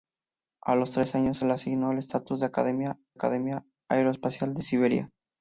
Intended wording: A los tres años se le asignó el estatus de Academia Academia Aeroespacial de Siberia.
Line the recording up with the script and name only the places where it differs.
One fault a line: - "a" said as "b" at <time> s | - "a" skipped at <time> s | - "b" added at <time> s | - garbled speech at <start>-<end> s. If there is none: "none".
none